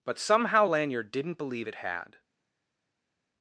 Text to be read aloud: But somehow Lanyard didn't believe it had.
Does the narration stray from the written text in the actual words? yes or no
no